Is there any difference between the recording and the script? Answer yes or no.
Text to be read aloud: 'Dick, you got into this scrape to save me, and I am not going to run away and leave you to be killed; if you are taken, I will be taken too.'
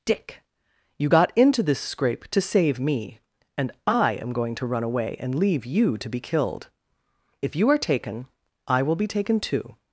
yes